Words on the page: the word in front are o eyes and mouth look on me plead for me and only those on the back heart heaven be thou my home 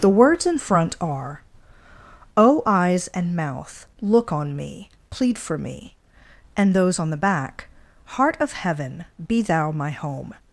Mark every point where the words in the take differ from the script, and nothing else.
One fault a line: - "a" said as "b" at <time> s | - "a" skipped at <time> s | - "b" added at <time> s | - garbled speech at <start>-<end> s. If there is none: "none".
- "word" said as "words" at 0.1 s
- "only" skipped at 6.7 s
- "of" added at 8.4 s